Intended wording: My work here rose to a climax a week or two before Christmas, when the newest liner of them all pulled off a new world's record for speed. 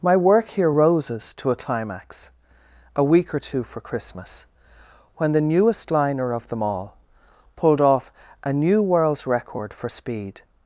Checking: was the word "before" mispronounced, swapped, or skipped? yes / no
yes